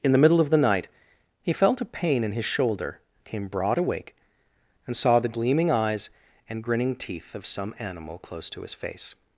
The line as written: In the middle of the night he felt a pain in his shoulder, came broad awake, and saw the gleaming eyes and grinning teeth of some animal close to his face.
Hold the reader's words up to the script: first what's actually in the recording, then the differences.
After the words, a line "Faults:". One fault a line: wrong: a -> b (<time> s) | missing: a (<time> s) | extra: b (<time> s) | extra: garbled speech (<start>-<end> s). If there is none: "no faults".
In the middle of the night he felt a pain in his shoulder, came broad awake, and saw the gleaming eyes and grinning teeth of some animal close to his face.
Faults:
no faults